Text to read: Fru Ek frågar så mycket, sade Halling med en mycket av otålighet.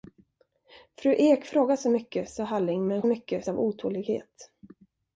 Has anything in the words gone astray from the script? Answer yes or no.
no